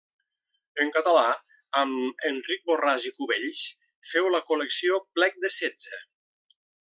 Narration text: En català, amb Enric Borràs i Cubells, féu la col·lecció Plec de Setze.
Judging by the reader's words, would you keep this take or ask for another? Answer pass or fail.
pass